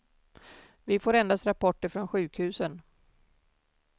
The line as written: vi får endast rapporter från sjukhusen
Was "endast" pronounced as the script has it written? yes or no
yes